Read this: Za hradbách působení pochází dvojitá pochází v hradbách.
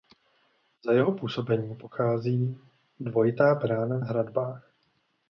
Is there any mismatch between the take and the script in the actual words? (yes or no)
yes